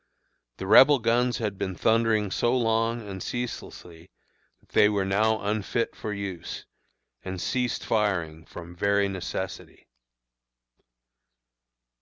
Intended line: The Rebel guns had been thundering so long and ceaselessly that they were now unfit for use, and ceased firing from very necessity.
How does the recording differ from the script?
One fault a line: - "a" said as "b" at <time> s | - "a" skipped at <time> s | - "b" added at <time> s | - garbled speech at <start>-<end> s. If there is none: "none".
none